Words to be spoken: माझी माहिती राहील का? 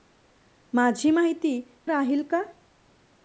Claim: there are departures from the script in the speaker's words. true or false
false